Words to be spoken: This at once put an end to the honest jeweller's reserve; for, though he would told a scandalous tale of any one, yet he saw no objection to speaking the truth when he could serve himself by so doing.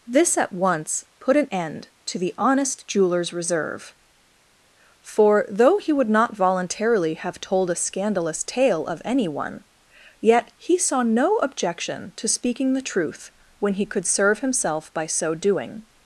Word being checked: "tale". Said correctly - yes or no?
yes